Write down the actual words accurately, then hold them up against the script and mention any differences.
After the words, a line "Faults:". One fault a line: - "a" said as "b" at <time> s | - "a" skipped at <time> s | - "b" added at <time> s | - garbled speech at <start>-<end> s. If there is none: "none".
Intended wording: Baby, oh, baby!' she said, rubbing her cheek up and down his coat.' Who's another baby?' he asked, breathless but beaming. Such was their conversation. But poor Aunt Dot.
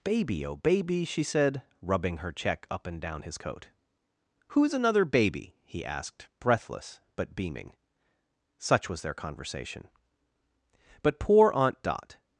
Baby, oh, baby!' she said, rubbing her check up and down his coat.' Who's another baby?' he asked, breathless but beaming. Such was their conversation. But poor Aunt Dot.
Faults:
- "cheek" said as "check" at 2.3 s